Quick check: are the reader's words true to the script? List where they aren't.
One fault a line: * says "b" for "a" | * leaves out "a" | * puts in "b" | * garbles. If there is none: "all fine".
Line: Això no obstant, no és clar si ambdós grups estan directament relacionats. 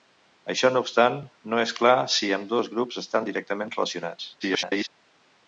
* garbles